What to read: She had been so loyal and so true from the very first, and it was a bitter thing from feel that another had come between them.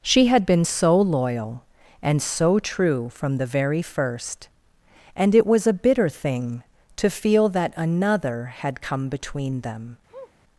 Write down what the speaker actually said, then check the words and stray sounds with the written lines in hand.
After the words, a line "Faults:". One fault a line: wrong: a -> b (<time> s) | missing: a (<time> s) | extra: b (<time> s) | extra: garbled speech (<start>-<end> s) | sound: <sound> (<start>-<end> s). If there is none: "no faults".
She had been so loyal and so true from the very first, and it was a bitter thing to feel that another had come between them.
Faults:
wrong: from -> to (7.0 s)
sound: sniff (10.1-10.3 s)